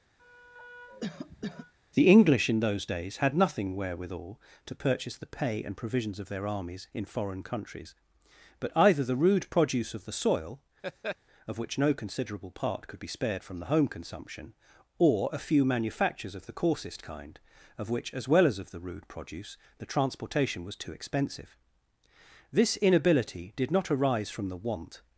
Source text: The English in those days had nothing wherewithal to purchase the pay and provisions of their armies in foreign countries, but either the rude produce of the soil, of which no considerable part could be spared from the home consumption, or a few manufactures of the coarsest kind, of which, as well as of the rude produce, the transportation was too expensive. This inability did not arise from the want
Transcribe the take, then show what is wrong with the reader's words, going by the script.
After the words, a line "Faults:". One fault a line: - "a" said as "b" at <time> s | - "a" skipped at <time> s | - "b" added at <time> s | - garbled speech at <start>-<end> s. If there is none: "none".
The English in those days had nothing wherewithal to purchase the pay and provisions of their armies in foreign countries, but either the rude produce of the soil, of which no considerable part could be spared from the home consumption, or a few manufactures of the coarsest kind, of which, as well as of the rude produce, the transportation was too expensive. This inability did not arise from the want
Faults:
none